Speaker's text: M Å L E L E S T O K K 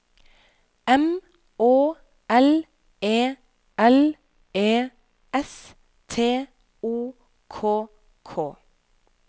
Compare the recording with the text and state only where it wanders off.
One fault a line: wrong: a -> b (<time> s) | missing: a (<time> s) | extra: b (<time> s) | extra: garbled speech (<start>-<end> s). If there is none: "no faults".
no faults